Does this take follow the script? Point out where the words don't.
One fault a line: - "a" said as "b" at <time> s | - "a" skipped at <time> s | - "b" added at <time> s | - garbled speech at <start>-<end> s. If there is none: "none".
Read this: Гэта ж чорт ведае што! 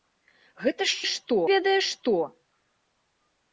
- "чорт" said as "што" at 1.1 s